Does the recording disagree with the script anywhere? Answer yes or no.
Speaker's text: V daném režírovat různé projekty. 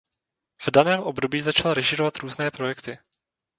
yes